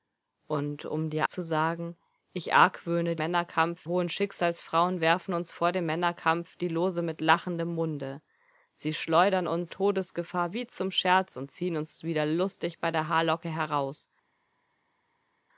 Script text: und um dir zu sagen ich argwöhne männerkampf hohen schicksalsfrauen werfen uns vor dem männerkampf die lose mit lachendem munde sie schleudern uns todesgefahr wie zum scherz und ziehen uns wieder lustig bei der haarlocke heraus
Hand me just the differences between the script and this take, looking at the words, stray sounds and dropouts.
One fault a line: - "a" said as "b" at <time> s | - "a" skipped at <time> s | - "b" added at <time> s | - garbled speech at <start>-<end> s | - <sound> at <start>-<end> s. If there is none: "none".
none